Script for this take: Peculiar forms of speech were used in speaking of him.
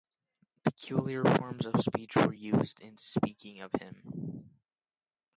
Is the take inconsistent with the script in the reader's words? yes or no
no